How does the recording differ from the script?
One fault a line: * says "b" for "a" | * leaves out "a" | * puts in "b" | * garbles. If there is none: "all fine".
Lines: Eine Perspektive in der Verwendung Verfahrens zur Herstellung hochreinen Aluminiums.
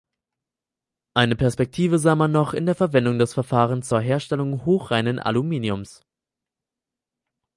* puts in "sah man noch"
* puts in "des"